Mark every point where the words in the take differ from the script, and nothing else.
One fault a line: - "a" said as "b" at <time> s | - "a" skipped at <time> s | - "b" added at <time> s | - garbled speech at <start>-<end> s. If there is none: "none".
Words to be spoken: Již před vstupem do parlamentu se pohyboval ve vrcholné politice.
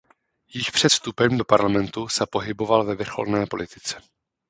none